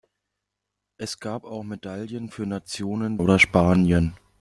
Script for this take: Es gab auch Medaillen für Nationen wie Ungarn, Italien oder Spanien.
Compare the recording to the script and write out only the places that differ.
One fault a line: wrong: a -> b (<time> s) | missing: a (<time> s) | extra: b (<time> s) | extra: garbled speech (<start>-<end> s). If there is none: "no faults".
missing: wie Ungarn Italien (3.2 s)